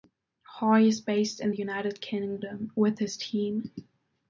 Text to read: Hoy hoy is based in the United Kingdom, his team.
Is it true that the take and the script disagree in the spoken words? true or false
true